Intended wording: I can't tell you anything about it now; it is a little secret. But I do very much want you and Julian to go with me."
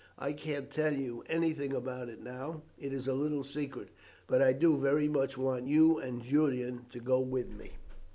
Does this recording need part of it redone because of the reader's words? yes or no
no